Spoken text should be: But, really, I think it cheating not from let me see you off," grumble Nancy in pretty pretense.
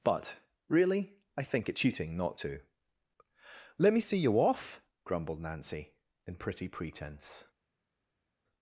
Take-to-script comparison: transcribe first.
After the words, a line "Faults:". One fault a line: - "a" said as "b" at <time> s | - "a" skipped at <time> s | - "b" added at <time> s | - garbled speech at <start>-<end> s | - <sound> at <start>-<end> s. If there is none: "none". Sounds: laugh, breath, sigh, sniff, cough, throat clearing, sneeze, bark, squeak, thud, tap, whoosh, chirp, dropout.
But, really, I think it cheating not to let me see you off," grumbled Nancy in pretty pretense.
Faults:
- "from" said as "to" at 2.4 s
- "grumble" said as "grumbled" at 5.0 s